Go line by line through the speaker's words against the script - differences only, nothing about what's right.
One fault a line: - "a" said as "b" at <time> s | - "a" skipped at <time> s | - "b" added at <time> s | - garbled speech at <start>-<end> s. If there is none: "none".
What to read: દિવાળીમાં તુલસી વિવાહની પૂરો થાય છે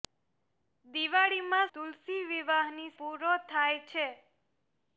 none